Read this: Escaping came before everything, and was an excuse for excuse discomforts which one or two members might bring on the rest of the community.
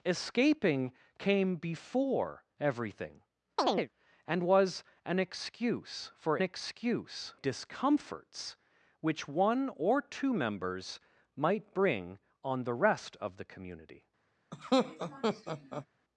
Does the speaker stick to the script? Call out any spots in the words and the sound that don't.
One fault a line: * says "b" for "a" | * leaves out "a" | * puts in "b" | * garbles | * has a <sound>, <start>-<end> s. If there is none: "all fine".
* has a chirp, 3.6-3.9 s
* has a laugh, 14.5-15.9 s